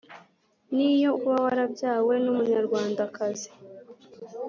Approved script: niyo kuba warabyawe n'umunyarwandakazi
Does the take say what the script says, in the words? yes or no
yes